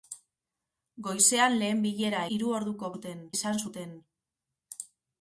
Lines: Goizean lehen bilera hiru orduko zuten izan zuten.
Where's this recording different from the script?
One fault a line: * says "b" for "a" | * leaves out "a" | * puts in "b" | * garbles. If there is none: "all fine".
all fine